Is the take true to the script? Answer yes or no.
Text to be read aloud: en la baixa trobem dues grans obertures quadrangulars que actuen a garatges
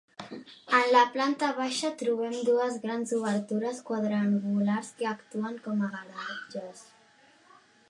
no